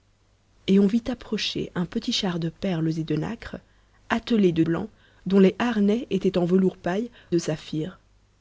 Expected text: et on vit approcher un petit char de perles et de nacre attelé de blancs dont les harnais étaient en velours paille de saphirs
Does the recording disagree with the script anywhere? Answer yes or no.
no